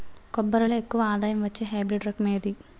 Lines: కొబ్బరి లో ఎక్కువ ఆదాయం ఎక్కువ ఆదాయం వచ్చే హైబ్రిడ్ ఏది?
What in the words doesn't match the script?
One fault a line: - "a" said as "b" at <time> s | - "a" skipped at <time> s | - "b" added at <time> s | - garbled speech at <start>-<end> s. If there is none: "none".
- "ఎక్కువ ఆదాయం" skipped at 1.4 s
- "రకం" added at 2.1 s